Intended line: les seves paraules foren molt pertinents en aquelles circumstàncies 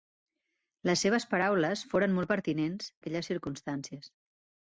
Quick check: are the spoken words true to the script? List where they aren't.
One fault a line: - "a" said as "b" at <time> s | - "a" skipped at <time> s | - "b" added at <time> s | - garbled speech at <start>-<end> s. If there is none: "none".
- "en" skipped at 2.9 s